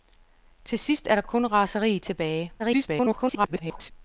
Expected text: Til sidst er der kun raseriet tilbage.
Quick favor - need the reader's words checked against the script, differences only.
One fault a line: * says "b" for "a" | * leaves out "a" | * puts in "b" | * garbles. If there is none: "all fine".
* garbles